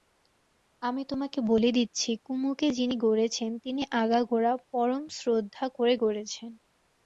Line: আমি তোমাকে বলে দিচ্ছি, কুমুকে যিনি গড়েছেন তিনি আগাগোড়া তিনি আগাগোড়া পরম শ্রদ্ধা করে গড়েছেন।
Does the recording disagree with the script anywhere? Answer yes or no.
yes